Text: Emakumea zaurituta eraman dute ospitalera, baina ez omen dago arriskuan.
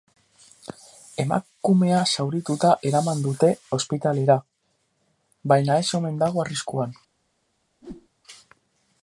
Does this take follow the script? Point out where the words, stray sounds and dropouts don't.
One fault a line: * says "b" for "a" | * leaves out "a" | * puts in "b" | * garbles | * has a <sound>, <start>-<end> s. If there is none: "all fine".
* has a whoosh, 7.8-8.1 s